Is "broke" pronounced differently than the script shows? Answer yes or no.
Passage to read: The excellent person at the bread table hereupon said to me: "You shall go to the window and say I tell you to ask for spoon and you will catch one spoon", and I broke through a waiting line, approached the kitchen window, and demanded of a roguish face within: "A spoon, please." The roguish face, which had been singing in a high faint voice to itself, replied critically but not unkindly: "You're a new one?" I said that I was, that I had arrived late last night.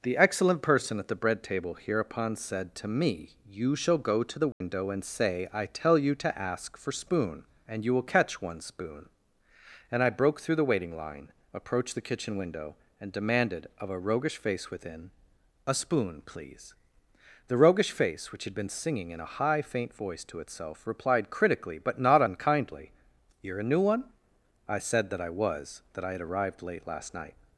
no